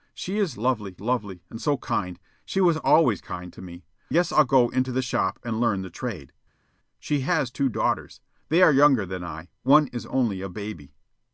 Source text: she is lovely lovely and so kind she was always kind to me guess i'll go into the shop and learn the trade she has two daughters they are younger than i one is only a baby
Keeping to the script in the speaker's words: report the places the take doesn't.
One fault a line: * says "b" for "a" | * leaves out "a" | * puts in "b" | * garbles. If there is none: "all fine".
all fine